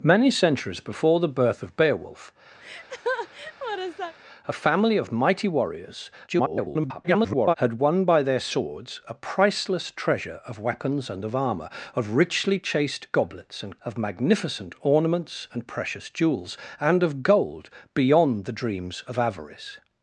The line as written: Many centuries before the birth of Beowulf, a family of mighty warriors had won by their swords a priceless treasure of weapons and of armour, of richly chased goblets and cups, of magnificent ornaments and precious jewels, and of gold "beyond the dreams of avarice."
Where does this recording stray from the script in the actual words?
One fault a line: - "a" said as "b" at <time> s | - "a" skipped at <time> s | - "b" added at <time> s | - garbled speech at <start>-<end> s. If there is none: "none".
- garbled speech at 6.3-7.5 s
- "cups" skipped at 13.8 s